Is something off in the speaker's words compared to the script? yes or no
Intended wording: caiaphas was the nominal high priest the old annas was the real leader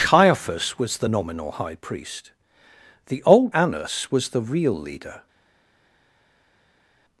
no